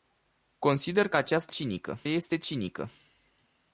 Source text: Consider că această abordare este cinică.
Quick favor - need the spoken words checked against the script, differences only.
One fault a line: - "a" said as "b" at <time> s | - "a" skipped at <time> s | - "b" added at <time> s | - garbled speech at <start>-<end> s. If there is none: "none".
- "abordare" said as "cinică" at 1.5 s